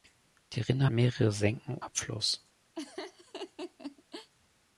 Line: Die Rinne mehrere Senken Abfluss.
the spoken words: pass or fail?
pass